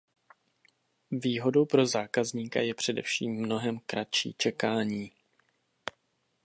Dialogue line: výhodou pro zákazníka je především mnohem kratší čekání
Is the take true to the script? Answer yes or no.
yes